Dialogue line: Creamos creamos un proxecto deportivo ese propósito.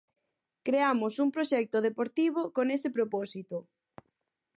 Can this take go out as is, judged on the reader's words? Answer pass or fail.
fail